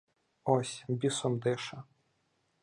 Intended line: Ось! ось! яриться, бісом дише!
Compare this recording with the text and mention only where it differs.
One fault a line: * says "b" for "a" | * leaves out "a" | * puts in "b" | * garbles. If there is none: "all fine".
* leaves out "ось яриться"